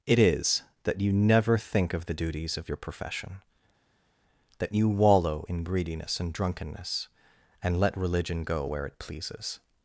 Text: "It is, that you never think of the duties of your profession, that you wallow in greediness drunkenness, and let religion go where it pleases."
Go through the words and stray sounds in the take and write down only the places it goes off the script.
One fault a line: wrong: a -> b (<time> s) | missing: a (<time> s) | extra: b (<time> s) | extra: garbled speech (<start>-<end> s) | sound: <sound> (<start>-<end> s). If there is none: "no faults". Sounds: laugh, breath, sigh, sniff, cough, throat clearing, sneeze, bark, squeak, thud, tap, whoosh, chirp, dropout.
extra: and (6.2 s)